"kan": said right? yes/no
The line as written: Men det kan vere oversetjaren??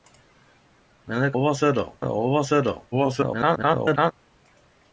no